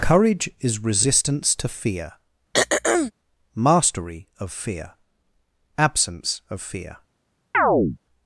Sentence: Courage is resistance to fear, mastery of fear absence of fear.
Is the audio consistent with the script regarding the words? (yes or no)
yes